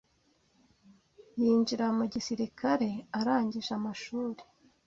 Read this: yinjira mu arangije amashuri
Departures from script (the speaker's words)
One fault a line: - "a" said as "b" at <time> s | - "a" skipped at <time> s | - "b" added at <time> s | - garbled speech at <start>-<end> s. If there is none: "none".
- "gisirikare" added at 2.1 s